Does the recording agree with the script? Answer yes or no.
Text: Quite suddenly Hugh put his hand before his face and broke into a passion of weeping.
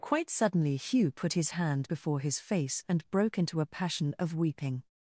yes